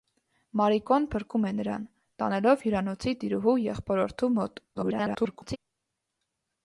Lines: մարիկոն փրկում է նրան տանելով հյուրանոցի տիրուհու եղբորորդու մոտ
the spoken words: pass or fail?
fail